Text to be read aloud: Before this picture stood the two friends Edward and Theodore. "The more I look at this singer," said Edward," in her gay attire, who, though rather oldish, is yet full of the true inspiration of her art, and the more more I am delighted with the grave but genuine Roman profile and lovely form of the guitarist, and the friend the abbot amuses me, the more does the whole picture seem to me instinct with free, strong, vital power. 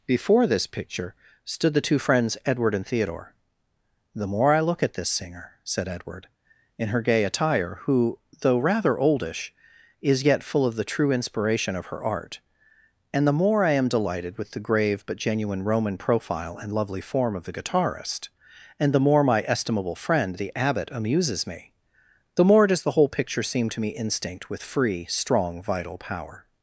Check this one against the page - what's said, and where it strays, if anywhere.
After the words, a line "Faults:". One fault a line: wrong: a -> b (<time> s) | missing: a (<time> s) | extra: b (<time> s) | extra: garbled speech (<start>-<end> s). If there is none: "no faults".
Before this picture stood the two friends Edward and Theodore. "The more I look at this singer," said Edward," in her gay attire, who, though rather oldish, is yet full of the true inspiration of her art, and the more I am delighted with the grave but genuine Roman profile and lovely form of the guitarist, and the more my estimable friend the abbot amuses me, the more does the whole picture seem to me instinct with free, strong, vital power.
Faults:
missing: more (13.6 s)
extra: more my estimable (19.0 s)